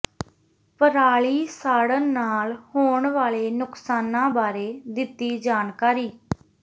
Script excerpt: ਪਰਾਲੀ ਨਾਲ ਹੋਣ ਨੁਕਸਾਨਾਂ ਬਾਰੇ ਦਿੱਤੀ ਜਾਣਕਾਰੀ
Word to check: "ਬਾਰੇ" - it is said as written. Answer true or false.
true